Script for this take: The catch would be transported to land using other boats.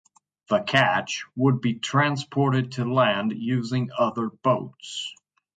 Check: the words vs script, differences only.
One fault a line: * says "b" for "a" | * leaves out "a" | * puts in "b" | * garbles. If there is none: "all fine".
all fine